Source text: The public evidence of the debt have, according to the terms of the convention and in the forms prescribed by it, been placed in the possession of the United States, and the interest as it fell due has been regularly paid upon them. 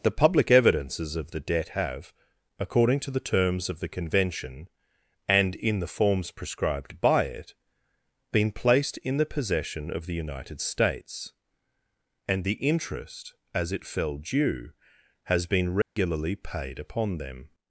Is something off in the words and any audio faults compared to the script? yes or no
yes